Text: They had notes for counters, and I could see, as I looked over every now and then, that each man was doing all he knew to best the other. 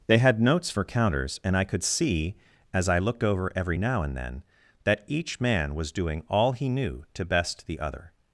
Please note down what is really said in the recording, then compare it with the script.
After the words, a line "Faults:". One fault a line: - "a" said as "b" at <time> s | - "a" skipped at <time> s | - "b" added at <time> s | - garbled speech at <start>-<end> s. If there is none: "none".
They had notes for counters, and I could see, as I looked over every now and then, that each man was doing all he knew to best the other.
Faults:
none